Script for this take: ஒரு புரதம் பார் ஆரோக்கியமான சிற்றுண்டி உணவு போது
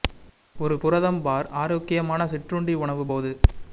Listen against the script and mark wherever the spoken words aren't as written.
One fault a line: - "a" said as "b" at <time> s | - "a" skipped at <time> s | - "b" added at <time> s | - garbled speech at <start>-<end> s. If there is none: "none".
none